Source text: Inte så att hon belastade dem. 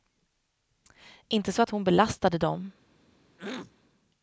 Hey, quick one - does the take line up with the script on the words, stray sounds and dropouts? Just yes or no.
no